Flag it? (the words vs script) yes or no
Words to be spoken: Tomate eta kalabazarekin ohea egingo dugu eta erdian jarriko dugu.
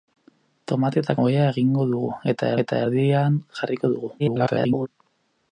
yes